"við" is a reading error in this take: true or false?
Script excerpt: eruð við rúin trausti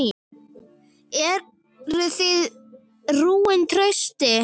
true